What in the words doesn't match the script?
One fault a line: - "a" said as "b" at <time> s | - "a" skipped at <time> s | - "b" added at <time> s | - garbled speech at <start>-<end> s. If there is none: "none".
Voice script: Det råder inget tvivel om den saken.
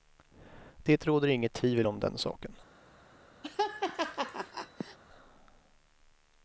none